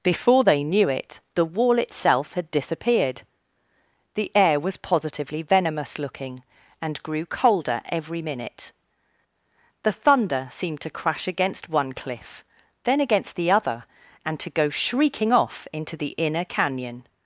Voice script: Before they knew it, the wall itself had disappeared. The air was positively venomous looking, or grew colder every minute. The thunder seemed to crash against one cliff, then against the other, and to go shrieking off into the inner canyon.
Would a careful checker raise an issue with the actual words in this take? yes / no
yes